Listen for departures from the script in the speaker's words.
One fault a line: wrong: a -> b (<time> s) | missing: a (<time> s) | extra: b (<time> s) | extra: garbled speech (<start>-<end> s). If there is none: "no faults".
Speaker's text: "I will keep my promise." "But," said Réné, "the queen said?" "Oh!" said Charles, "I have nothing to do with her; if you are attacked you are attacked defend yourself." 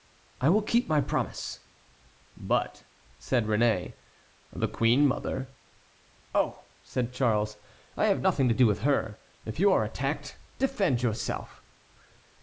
wrong: said -> mother (5.0 s)
missing: you are attacked (10.4 s)